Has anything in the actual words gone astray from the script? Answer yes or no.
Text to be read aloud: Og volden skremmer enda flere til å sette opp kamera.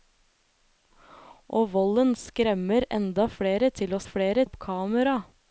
yes